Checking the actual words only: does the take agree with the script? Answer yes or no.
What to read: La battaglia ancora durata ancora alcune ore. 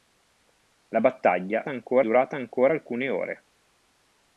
yes